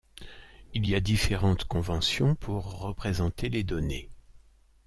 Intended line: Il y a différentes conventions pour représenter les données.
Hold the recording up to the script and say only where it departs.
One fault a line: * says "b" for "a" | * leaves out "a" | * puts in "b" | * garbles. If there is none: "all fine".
all fine